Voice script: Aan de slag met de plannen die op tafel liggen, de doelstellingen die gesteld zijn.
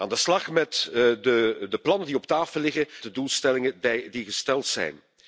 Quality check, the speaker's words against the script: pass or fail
pass